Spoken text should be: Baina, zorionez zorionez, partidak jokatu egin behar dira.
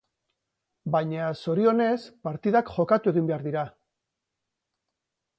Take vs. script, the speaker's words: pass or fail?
fail